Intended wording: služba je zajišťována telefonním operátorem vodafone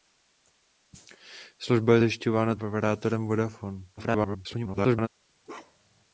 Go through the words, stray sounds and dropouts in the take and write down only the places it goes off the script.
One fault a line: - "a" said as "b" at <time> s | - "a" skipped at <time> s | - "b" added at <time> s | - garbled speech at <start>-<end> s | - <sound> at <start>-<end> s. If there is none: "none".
- "telefonním" skipped at 2.6 s
- garbled speech at 4.0-5.1 s
- bark at 5.4-6.0 s